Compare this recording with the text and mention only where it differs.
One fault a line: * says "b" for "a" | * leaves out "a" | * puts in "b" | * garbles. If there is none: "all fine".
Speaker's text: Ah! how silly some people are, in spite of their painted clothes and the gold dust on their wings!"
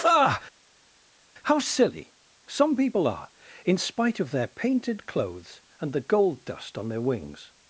all fine